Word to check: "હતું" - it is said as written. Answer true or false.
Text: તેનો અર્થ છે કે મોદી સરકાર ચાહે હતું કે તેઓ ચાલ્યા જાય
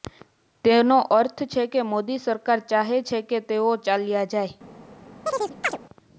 false